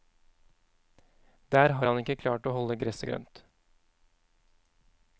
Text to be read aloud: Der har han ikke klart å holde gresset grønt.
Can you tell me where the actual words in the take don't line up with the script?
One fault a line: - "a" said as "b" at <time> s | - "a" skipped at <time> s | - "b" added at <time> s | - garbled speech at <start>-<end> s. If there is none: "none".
none